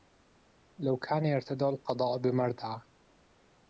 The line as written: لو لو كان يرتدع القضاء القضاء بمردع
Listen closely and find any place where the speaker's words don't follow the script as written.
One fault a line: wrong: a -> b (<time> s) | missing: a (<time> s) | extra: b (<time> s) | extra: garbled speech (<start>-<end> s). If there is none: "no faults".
missing: لو (1.0 s)
missing: القضاء (2.2 s)